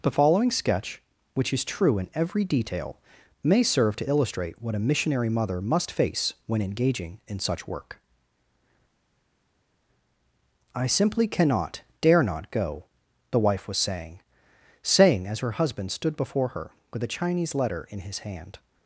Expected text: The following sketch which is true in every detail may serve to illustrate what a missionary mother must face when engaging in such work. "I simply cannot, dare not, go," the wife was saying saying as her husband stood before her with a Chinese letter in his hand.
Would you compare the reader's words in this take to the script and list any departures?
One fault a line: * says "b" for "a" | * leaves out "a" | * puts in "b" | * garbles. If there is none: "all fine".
all fine